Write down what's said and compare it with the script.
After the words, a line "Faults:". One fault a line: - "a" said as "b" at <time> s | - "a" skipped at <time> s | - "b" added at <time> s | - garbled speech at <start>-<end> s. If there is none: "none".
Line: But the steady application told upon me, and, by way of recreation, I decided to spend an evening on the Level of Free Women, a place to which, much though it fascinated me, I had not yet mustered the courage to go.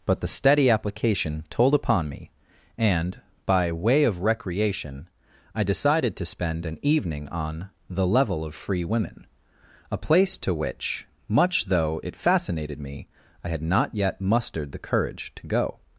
But the steady application told upon me, and, by way of recreation, I decided to spend an evening on the Level of Free Women, a place to which, much though it fascinated me, I had not yet mustered the courage to go.
Faults:
none